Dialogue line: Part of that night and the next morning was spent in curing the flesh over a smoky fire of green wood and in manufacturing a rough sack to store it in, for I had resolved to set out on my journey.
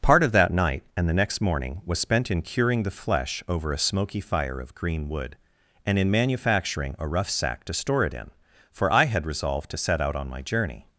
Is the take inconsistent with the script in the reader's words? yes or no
no